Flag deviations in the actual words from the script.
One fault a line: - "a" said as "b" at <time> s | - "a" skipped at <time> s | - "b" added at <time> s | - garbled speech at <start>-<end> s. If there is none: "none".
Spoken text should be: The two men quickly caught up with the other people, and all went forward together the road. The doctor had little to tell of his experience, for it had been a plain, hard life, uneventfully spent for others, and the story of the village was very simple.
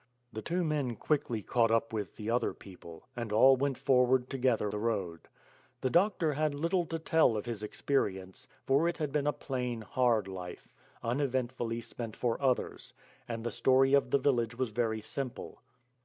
none